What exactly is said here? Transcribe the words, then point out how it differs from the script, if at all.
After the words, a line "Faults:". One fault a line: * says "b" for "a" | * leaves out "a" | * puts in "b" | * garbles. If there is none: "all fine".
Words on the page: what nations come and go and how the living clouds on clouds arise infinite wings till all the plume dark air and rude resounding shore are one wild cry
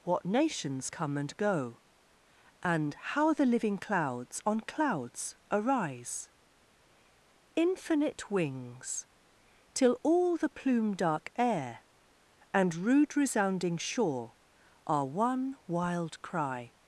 what nations come and go and how the living clouds on clouds arise infinite wings till all the plume dark air and rude resounding shore are one wild cry
Faults:
all fine